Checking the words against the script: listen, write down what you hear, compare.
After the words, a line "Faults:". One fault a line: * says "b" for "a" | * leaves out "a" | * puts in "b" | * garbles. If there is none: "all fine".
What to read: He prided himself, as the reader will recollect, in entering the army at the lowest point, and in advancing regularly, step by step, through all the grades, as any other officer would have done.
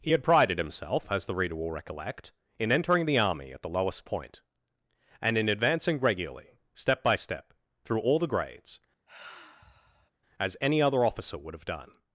He had prided himself, as the reader will recollect, in entering the army at the lowest point, and in advancing regularly, step by step, through all the grades, as any other officer would have done.
Faults:
* puts in "had"